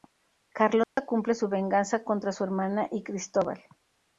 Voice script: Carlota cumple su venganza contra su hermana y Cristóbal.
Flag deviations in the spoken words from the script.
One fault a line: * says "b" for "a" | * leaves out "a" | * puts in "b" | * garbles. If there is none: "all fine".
all fine